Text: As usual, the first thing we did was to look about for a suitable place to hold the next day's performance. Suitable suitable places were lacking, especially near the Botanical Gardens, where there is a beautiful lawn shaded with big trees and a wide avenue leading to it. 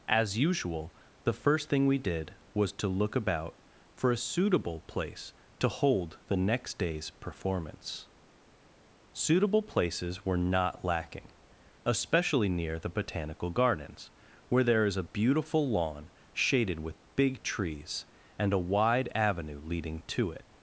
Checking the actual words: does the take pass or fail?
fail